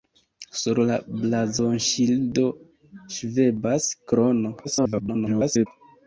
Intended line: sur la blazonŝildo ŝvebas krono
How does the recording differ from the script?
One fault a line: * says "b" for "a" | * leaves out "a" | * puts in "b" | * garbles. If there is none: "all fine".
* garbles